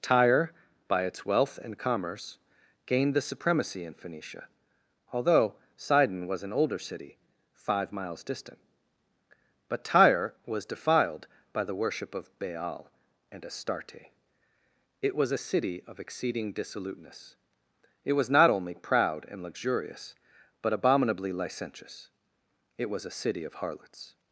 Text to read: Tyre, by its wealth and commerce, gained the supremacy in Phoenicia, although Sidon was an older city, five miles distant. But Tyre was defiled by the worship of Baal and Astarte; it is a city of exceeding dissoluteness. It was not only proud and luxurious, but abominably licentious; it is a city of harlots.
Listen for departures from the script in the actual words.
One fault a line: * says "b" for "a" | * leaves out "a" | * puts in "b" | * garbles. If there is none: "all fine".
* says "was" for "is"
* says "was" for "is"